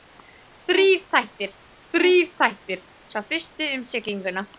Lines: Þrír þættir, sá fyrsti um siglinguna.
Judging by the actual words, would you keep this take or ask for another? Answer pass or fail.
fail